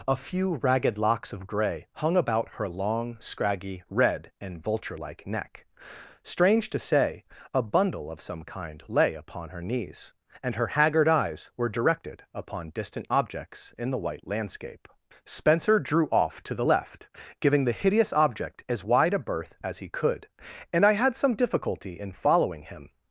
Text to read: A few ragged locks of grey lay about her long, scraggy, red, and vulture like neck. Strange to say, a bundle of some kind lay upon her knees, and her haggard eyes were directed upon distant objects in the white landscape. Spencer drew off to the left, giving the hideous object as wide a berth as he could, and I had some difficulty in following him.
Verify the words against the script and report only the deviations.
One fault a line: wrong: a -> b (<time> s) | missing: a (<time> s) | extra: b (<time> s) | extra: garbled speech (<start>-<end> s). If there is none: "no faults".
wrong: lay -> hung (1.9 s)